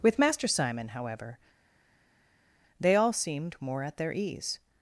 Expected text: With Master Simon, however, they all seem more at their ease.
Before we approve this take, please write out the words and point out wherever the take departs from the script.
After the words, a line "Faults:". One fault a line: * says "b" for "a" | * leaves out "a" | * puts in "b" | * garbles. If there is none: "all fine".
With Master Simon, however, they all seemed more at their ease.
Faults:
* says "seemed" for "seem"